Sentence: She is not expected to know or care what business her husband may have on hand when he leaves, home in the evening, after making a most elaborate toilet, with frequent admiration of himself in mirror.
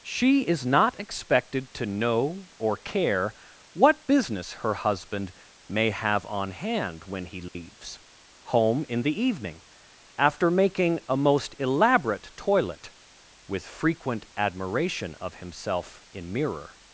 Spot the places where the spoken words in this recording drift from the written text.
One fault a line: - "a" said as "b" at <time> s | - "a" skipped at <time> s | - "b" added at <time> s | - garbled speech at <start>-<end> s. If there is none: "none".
none